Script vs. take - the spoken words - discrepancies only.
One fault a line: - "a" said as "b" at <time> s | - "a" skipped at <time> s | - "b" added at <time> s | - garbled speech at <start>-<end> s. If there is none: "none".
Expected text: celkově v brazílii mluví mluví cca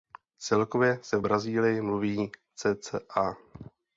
- "se" added at 1.0 s
- "mluví" skipped at 2.3 s